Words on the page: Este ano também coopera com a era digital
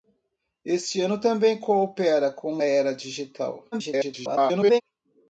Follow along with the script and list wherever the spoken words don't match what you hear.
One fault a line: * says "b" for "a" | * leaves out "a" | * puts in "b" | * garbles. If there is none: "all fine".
* leaves out "a"
* garbles